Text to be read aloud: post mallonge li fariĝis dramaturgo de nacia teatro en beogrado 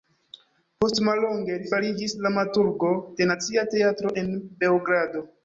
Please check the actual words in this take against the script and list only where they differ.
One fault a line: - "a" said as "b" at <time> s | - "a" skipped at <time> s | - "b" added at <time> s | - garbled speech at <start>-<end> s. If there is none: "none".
none